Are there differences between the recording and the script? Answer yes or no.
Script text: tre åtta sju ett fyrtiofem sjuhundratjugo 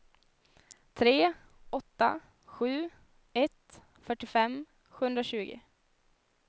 no